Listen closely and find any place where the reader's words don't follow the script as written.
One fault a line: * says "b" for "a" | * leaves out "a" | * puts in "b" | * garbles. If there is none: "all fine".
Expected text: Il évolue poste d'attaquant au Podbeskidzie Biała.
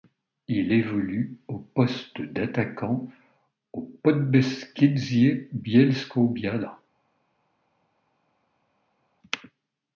* puts in "au"
* puts in "Bielsko"